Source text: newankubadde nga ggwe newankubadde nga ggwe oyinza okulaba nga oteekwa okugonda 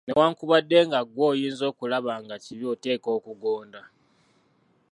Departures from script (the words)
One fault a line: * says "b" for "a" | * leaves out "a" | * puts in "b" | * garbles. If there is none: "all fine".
* leaves out "newankubadde nga ggwe"
* puts in "kibi"